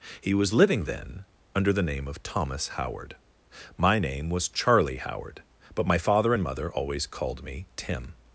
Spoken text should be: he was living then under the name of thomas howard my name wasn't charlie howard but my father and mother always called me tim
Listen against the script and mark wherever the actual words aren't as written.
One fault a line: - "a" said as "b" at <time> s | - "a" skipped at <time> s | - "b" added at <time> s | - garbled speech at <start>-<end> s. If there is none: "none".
- "wasn't" said as "was" at 4.3 s